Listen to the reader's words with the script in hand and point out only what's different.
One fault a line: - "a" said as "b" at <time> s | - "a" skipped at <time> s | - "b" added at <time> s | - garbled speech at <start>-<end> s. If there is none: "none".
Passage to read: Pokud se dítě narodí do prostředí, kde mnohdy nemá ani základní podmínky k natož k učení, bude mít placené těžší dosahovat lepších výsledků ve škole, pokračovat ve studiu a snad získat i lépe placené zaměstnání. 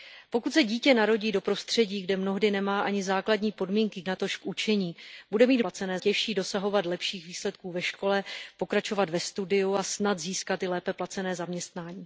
none